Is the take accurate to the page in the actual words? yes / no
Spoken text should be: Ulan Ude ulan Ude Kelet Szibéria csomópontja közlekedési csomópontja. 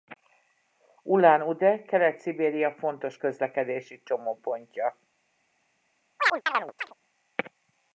no